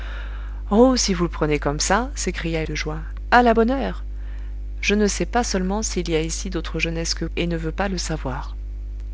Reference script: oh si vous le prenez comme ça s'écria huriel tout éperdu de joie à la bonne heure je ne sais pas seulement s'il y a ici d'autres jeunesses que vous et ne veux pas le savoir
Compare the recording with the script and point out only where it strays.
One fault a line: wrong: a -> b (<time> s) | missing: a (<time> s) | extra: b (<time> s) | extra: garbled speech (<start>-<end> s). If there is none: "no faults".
missing: huriel tout éperdu (2.6 s)
missing: vous (7.2 s)